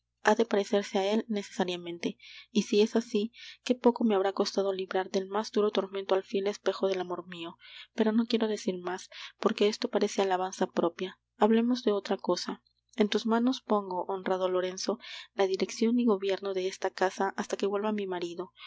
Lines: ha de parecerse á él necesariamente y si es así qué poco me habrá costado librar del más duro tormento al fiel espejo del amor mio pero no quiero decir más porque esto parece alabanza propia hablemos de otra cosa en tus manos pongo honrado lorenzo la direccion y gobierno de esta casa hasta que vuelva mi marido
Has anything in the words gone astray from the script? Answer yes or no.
no